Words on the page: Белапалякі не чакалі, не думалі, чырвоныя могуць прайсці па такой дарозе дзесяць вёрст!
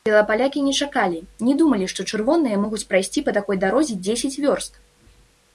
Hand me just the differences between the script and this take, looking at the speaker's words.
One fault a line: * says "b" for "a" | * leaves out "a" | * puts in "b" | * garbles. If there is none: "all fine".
* puts in "што"